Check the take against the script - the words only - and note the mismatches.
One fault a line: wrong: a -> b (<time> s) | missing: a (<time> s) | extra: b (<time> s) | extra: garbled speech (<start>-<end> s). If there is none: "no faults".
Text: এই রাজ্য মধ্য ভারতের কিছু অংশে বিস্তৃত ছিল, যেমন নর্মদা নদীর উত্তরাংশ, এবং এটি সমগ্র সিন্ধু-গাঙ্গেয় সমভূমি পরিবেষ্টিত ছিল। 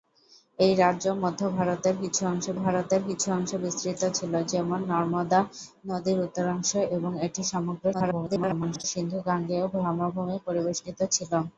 extra: ভারতের কিছু অংশে (2.6 s)
extra: garbled speech (7.9-8.8 s)